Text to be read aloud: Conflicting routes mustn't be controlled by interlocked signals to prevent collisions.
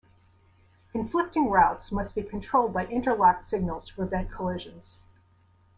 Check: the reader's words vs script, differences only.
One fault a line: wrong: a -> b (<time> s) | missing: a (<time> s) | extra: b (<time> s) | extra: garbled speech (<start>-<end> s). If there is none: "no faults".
wrong: mustn't -> must (1.9 s)